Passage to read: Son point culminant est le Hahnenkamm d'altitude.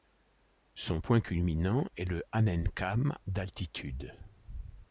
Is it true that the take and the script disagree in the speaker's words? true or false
false